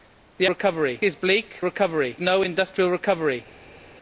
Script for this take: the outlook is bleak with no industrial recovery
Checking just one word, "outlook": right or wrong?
wrong